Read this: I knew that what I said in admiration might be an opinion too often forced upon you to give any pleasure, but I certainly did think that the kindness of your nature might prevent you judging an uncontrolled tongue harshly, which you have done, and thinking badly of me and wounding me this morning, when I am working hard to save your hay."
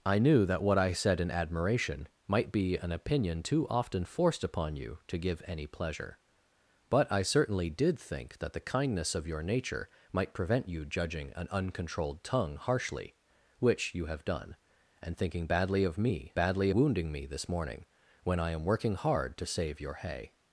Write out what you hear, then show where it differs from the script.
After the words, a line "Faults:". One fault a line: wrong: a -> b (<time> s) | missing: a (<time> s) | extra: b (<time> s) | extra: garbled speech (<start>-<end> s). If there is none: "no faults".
I knew that what I said in admiration might be an opinion too often forced upon you to give any pleasure, but I certainly did think that the kindness of your nature might prevent you judging an uncontrolled tongue harshly, which you have done, and thinking badly of me badly wounding me this morning, when I am working hard to save your hay."
Faults:
wrong: and -> badly (16.3 s)